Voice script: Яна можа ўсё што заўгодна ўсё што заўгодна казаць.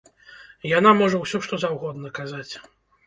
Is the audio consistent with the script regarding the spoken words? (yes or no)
no